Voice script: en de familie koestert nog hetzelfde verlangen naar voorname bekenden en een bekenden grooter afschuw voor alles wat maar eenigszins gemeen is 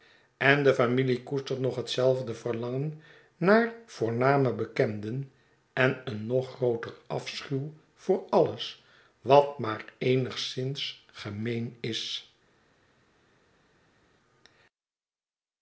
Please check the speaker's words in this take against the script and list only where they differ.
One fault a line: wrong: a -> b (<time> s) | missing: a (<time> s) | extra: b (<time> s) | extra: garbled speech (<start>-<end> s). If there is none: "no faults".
wrong: bekenden -> nog (6.3 s)